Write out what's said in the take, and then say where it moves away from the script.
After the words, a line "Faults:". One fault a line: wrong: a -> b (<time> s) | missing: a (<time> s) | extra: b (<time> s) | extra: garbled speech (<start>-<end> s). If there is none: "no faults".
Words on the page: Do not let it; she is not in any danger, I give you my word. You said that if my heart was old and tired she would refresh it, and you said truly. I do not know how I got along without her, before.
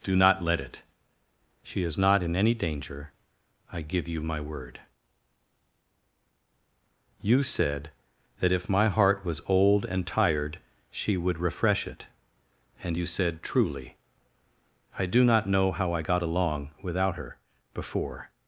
Do not let it; she is not in any danger, I give you my word. You said that if my heart was old and tired she would refresh it, and you said truly. I do not know how I got along without her, before.
Faults:
no faults